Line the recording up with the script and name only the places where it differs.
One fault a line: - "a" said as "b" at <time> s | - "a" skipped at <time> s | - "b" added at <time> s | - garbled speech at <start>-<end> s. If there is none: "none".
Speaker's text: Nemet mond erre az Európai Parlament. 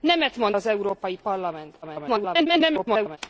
- "erre" skipped at 0.6 s
- garbled speech at 1.8-3.2 s